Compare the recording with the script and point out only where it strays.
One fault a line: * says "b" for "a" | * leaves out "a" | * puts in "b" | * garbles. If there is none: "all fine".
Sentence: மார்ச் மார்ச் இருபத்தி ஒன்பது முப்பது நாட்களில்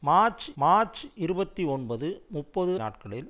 all fine